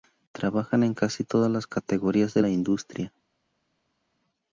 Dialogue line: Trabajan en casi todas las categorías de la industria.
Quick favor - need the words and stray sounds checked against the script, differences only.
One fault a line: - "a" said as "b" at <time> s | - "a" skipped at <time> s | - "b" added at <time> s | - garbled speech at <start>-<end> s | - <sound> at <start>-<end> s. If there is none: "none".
none